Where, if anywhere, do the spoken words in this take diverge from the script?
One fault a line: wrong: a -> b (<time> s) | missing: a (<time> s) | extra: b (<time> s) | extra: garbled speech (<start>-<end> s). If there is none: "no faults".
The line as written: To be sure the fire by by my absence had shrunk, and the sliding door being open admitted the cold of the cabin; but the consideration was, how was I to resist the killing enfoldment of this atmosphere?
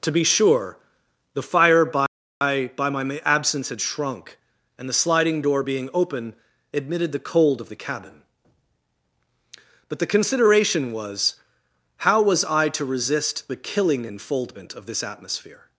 no faults